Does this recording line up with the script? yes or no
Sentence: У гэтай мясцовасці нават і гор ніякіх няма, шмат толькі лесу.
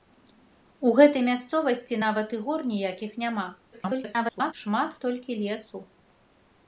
no